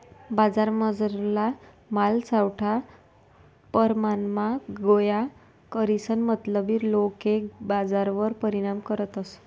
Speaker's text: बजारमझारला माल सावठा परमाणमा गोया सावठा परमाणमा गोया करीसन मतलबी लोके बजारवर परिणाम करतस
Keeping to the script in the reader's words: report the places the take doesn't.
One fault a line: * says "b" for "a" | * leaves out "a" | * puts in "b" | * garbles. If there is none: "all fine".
* leaves out "सावठा परमाणमा गोया"